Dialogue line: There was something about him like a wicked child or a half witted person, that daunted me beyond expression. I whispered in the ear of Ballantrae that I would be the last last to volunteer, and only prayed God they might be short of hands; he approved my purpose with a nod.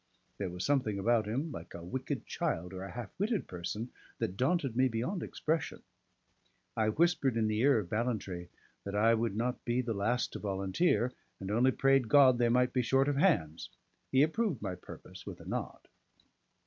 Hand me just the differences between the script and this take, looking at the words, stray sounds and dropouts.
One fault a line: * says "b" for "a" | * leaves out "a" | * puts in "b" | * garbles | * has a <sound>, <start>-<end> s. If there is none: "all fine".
* puts in "not"
* leaves out "last"